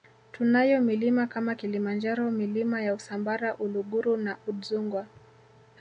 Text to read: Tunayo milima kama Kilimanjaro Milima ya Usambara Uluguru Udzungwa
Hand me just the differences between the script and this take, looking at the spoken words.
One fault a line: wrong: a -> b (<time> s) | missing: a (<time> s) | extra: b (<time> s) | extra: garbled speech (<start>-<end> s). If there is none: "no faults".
extra: na (4.2 s)